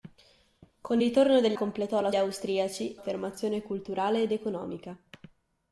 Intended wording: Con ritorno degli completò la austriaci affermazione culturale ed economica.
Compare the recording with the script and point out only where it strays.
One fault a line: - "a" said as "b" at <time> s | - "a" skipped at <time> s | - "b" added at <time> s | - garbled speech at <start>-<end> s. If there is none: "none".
none